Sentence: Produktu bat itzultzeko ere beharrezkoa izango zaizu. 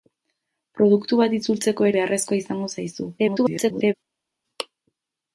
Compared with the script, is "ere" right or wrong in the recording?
wrong